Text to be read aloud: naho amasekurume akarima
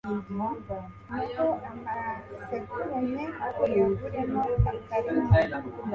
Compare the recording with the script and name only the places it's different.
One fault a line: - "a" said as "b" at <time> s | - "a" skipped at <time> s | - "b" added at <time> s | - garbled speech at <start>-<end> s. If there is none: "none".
- "uyaguremo" added at 3.6 s